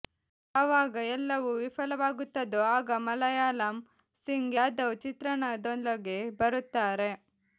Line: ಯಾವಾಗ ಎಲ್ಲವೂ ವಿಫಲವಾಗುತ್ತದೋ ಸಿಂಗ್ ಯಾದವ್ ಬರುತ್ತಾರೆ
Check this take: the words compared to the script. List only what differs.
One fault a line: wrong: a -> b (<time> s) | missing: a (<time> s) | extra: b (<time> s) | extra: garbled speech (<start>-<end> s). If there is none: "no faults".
extra: ಆಗ ಮುಲಾಯಂ (2.7 s)
extra: ಚಿತ್ರಣದೊಳಗೆ (5.0 s)